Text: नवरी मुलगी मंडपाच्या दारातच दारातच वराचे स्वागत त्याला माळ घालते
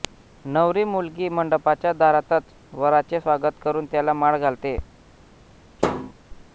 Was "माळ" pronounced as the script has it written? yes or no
yes